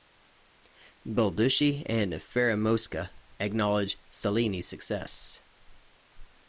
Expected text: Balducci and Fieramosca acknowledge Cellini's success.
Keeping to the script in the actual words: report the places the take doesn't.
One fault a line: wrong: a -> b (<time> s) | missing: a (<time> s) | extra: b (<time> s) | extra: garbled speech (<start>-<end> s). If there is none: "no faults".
no faults